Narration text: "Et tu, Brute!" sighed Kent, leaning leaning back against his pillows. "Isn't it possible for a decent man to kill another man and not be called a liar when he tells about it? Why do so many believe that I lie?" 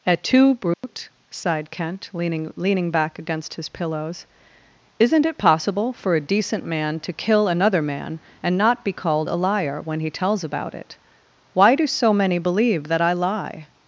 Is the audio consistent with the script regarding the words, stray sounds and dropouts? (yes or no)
no